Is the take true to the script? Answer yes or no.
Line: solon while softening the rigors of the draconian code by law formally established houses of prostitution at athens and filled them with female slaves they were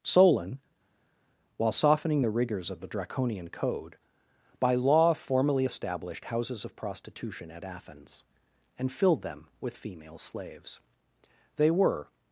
yes